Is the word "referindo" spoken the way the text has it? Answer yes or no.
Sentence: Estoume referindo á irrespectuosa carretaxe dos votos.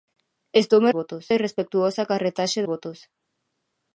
no